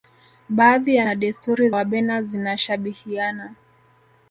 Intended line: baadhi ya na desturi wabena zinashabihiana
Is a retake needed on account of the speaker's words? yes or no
no